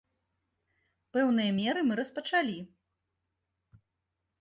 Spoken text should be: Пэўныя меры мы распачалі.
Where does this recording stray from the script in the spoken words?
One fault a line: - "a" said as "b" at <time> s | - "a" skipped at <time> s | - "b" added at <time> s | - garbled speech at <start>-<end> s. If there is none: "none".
none